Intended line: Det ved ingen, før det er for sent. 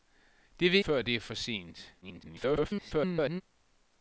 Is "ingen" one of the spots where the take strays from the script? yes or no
yes